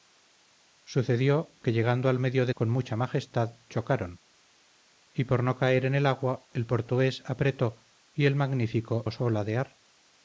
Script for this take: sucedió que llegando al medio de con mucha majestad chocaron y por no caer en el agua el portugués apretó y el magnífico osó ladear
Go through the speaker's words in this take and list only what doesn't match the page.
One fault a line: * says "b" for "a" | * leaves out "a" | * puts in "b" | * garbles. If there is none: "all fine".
all fine